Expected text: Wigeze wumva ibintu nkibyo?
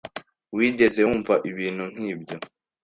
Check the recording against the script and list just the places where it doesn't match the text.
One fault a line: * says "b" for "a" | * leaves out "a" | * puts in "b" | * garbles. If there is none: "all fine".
all fine